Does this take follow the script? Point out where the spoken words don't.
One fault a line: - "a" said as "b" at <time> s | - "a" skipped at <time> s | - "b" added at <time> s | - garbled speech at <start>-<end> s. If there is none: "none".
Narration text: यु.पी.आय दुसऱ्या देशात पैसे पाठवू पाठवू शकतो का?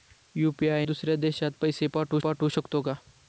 none